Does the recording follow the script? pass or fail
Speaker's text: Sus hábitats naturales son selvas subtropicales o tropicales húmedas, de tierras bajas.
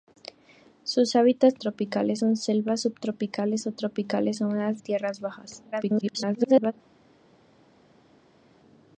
fail